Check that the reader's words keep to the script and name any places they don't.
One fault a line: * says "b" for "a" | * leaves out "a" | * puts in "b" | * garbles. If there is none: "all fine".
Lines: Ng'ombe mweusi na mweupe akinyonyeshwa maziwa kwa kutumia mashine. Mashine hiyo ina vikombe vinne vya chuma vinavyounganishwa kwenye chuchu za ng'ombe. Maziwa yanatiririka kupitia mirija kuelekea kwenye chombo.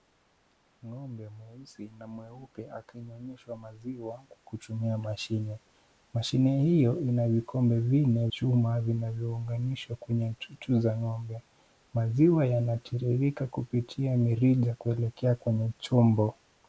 * leaves out "vya"